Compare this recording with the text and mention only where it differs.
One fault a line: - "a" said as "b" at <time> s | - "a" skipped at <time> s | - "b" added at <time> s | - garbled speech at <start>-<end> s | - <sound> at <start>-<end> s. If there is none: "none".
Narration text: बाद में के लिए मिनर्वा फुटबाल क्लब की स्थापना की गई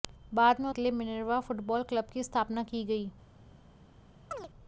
- chirp at 4.3-4.5 s